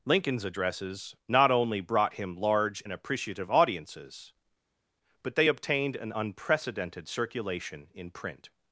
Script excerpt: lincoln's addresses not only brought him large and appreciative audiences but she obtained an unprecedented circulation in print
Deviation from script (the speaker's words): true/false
true